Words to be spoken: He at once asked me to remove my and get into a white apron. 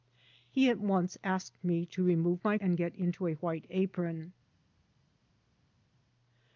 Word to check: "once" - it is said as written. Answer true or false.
true